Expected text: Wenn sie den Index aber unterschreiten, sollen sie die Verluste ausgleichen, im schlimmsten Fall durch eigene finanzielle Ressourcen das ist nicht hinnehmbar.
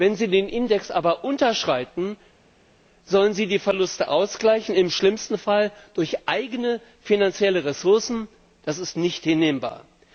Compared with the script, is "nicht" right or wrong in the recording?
right